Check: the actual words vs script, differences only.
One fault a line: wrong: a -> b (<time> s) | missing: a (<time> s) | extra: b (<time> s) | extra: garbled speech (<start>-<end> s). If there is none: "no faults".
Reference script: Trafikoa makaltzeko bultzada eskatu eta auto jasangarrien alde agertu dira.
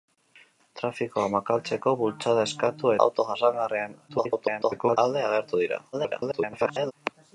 missing: eta (3.0 s)
extra: garbled speech (4.1-5.0 s)
extra: garbled speech (5.9-6.9 s)